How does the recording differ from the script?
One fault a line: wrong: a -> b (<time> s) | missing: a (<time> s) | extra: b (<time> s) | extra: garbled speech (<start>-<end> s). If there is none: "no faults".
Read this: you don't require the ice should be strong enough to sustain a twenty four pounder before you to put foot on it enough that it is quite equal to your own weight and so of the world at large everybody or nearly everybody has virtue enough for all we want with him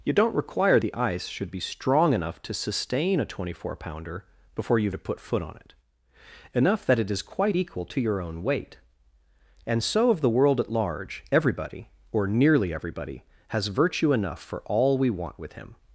no faults